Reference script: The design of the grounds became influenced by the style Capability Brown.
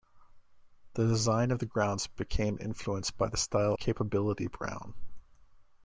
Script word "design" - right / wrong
right